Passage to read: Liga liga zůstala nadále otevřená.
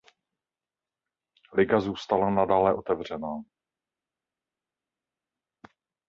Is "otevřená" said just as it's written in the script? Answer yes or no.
yes